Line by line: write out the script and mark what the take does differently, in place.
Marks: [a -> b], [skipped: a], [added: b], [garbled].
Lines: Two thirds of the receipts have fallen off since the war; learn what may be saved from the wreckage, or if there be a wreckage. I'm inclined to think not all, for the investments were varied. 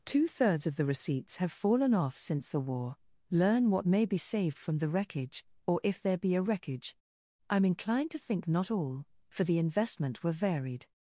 Two thirds of the receipts have fallen off since the war; learn what may be saved from the wreckage, or if there be a wreckage. I'm inclined to think not all, for the [investments -> investment] were varied.